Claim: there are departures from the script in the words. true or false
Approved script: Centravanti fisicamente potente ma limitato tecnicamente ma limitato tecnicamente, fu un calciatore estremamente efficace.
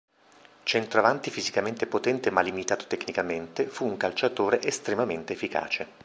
true